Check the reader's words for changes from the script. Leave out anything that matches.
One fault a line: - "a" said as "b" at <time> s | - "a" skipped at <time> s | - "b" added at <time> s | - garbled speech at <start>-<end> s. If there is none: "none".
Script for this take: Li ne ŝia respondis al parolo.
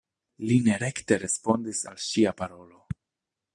- "ŝia" said as "rekte" at 0.8 s
- "ŝia" added at 2.1 s